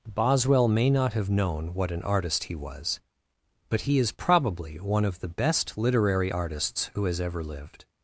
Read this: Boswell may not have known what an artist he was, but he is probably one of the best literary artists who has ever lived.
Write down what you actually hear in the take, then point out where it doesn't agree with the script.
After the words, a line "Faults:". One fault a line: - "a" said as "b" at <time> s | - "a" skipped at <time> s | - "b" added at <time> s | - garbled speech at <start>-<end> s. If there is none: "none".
Boswell may not have known what an artist he was, but he is probably one of the best literary artists who has ever lived.
Faults:
none